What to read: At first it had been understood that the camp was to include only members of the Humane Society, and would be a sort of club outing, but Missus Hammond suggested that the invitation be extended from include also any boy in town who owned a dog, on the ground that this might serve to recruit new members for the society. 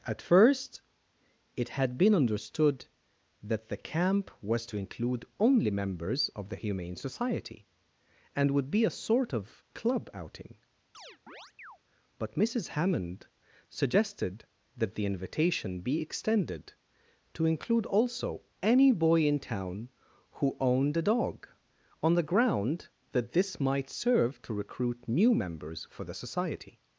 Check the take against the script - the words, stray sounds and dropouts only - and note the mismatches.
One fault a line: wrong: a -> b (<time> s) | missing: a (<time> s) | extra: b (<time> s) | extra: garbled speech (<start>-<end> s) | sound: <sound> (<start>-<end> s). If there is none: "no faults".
sound: chirp (10.9-11.8 s)
wrong: from -> to (17.3 s)